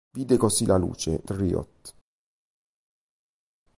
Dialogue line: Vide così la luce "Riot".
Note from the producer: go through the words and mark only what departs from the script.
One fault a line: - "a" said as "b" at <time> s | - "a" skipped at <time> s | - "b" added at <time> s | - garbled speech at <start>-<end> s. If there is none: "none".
none